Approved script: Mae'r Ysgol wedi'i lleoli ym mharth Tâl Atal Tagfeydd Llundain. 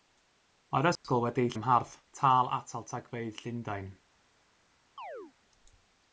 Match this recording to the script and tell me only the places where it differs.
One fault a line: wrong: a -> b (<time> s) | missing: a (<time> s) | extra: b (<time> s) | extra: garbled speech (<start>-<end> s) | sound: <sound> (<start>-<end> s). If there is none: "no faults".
sound: dropout (1.0-1.0 s)
missing: lleoli (1.5 s)
sound: chirp (5.0-5.3 s)